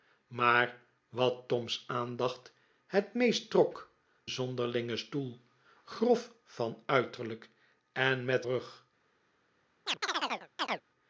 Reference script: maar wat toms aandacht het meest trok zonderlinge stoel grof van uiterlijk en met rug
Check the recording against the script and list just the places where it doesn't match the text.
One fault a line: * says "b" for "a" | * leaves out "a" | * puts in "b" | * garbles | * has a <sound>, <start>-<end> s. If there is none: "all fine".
* has a chirp, 9.9-10.8 s